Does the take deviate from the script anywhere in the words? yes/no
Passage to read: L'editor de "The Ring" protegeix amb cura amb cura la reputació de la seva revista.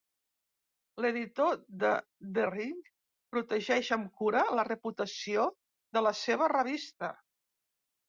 yes